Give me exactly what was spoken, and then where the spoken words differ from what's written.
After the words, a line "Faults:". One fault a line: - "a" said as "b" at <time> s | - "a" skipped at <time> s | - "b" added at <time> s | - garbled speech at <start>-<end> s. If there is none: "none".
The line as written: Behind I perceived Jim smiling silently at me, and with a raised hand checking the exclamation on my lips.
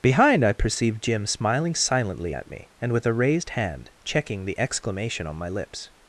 Behind I perceived Jim smiling silently at me, and with a raised hand checking the exclamation on my lips.
Faults:
none